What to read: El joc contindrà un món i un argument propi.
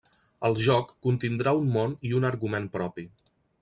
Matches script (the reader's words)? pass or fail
pass